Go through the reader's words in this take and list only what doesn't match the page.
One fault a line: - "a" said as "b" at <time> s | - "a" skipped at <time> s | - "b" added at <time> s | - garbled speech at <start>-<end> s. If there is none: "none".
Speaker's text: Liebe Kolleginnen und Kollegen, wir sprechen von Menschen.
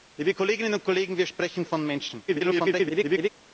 - garbled speech at 2.3-3.3 s